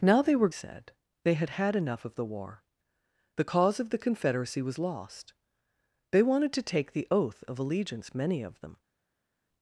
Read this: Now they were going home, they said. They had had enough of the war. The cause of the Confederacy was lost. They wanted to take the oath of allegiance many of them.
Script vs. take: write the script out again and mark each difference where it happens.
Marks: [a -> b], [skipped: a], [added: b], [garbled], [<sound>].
Now they were [skipped: going home, they] said. They had had enough of the war. The cause of the Confederacy was lost. They wanted to take the oath of allegiance many of them.